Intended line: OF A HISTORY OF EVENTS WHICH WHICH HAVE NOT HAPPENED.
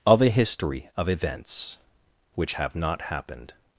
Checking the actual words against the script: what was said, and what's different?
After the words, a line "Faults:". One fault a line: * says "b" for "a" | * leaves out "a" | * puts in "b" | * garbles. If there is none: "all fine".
OF A HISTORY OF EVENTS WHICH HAVE NOT HAPPENED.
Faults:
* leaves out "WHICH"